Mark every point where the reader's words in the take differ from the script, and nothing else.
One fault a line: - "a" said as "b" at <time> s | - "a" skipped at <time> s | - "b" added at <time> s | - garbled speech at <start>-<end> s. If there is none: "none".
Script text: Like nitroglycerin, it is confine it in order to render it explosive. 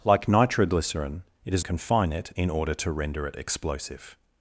none